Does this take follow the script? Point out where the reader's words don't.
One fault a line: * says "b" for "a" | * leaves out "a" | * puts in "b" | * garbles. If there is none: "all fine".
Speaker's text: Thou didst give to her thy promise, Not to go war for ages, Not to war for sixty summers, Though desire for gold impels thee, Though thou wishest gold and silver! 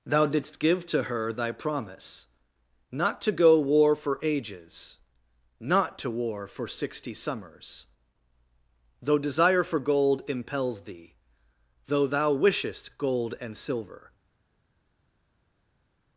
all fine